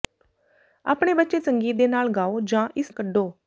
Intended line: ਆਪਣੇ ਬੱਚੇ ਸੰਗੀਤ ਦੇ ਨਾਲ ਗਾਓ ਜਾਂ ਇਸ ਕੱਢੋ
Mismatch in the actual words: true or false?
false